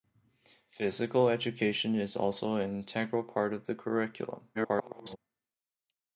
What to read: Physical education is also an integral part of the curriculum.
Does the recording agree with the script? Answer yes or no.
no